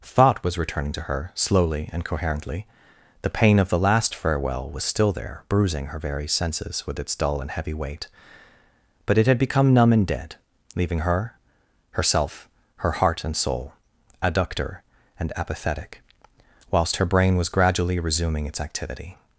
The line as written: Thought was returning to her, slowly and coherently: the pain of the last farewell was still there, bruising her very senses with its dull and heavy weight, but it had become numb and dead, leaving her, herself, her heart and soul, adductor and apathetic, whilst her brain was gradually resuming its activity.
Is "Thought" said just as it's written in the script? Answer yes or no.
yes